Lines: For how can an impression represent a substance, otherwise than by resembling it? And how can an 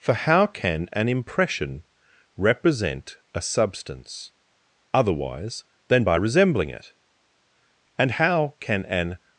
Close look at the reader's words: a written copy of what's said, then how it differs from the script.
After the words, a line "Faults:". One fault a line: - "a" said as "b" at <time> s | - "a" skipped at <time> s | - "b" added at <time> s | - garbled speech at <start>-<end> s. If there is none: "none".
For how can an impression represent a substance, otherwise than by resembling it? And how can an
Faults:
none